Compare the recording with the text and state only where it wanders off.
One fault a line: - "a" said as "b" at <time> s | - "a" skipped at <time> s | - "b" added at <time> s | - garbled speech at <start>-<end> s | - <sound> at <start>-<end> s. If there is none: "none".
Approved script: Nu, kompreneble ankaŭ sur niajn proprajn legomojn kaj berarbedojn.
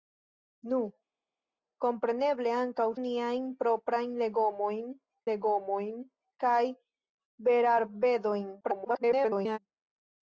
- "sur" skipped at 2.9 s
- "legomojn" added at 5.3 s
- garbled speech at 8.6-9.6 s